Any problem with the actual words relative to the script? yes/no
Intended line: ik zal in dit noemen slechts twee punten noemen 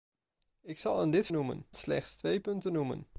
no